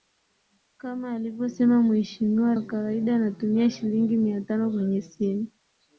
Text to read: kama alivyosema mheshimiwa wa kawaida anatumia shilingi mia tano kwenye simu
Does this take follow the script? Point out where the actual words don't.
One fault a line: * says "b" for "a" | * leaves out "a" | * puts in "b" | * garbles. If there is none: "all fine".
all fine